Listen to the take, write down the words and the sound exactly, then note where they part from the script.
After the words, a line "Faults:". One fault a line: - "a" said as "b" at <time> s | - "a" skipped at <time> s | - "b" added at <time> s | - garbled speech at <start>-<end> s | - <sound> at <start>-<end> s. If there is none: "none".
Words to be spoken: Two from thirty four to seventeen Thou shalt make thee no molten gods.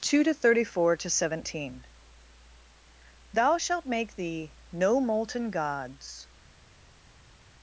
Two to thirty four to seventeen Thou shalt make thee no molten gods.
Faults:
- "from" said as "to" at 0.2 s